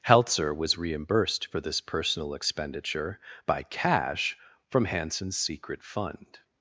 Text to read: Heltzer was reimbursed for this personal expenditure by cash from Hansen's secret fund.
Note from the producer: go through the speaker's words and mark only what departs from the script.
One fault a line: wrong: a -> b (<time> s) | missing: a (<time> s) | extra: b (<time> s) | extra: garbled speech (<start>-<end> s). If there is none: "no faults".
no faults